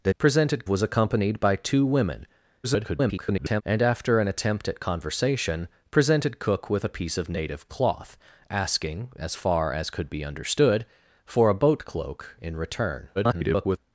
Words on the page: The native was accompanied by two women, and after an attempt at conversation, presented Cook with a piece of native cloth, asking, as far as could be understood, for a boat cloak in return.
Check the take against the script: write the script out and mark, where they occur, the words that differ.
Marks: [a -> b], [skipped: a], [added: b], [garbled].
The [native -> presented] was accompanied by two women, [garbled] and after an attempt at conversation, presented Cook with a piece of native cloth, asking, as far as could be understood, for a boat cloak in return. [garbled]